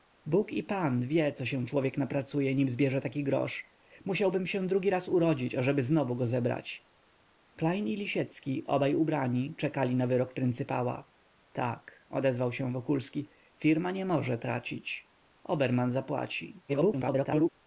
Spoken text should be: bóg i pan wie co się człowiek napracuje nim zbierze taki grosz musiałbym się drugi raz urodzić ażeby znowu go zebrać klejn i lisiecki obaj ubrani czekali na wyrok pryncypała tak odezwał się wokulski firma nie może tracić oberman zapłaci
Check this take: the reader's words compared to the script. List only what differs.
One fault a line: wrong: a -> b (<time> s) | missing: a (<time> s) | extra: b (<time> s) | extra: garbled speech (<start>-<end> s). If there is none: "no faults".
extra: garbled speech (16.7-17.5 s)